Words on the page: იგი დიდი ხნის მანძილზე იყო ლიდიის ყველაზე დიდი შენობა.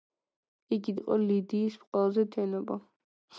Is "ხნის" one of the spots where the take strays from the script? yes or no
yes